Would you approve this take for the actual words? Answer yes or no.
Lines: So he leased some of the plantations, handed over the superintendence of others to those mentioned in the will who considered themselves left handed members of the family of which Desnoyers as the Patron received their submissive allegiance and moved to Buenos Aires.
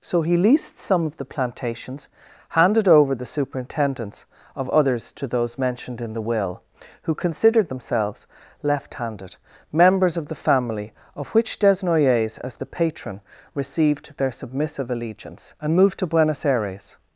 yes